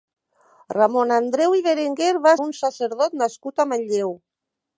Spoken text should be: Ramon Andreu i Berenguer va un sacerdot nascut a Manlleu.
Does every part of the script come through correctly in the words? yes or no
yes